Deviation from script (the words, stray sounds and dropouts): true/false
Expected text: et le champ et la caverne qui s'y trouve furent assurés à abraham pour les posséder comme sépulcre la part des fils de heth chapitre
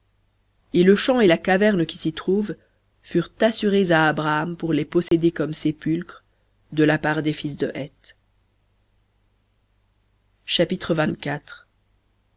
true